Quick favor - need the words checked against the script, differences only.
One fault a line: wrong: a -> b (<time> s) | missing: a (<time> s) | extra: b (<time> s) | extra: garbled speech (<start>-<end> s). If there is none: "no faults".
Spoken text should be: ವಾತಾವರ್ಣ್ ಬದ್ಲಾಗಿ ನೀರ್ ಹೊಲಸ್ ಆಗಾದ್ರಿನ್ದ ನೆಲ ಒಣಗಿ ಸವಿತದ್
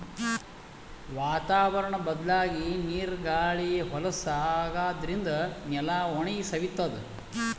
extra: ಗಾಳಿ (3.3 s)